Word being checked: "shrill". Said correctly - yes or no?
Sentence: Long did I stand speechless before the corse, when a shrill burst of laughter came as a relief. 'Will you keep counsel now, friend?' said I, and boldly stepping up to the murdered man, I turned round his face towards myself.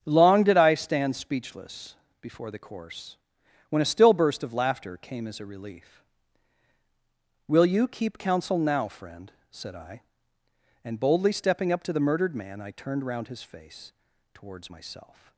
no